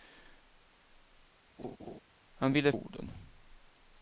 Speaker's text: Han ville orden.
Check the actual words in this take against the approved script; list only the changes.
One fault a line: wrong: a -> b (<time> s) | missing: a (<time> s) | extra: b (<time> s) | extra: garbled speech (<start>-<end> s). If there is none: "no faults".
no faults